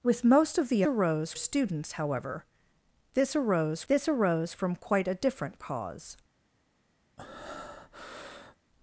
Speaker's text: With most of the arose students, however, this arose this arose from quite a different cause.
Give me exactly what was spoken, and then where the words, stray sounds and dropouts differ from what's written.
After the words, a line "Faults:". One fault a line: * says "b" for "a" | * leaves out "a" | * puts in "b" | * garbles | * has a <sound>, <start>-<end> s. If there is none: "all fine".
With most of the arose students, however, this arose this arose from quite a different cause.
Faults:
* has a breath, 7.2-8.6 s